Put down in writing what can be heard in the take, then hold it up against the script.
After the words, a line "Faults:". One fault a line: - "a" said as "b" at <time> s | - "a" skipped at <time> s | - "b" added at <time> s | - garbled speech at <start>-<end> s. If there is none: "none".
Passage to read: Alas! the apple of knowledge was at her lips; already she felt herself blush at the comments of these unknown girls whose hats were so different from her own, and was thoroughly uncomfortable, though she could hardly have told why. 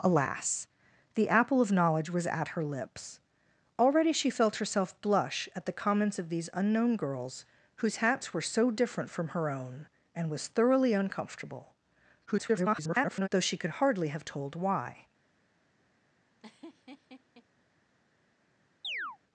Alas! the apple of knowledge was at her lips; already she felt herself blush at the comments of these unknown girls whose hats were so different from her own, and was thoroughly uncomfortable, [garbled] though she could hardly have told why.
Faults:
- garbled speech at 12.3-13.3 s